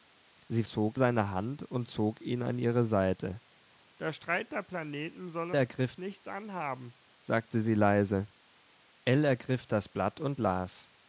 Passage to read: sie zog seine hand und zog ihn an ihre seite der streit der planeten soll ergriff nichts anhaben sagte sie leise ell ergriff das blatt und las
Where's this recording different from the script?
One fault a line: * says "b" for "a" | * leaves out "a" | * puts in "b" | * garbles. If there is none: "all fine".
all fine